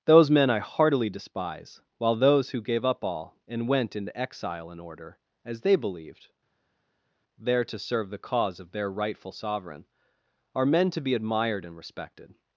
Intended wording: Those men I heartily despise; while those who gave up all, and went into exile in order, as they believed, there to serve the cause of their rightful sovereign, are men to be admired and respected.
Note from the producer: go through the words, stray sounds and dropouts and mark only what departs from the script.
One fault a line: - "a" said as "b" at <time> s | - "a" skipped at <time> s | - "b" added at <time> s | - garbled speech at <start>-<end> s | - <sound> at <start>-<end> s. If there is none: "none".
none